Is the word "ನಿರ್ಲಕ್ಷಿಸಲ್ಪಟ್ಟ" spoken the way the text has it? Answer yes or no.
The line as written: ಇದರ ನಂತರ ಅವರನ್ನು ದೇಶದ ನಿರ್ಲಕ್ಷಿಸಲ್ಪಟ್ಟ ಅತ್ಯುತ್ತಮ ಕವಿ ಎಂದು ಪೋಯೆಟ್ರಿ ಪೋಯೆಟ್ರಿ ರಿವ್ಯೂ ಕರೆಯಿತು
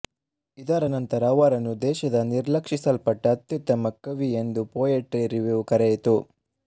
yes